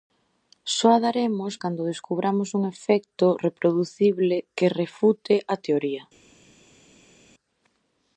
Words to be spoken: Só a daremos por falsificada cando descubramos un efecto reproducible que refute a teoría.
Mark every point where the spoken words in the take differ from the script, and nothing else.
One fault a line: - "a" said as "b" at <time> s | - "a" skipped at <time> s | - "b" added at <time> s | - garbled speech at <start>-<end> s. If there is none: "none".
- "por falsificada" skipped at 1.5 s